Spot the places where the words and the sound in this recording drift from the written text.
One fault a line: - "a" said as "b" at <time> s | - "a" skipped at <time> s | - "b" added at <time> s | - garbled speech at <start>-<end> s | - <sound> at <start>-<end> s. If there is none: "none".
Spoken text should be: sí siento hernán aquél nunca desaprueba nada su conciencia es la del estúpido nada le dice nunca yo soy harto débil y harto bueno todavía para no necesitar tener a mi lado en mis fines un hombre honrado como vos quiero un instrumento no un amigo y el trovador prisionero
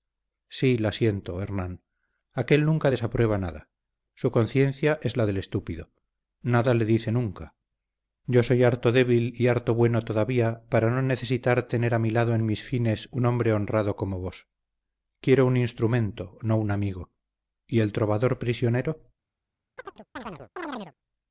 - "la" added at 0.8 s
- chirp at 19.8-20.9 s